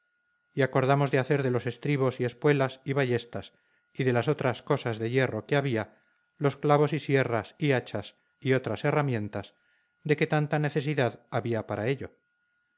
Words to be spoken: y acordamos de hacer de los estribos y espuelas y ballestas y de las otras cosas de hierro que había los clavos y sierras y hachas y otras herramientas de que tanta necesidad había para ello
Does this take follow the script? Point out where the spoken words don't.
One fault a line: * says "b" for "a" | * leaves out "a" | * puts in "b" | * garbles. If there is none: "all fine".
all fine